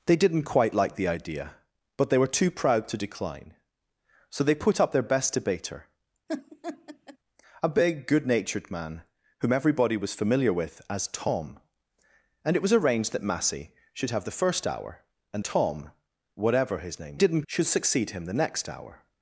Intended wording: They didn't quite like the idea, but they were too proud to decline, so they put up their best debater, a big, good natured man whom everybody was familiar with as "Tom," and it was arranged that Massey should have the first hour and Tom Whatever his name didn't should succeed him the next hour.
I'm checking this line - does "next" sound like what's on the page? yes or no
yes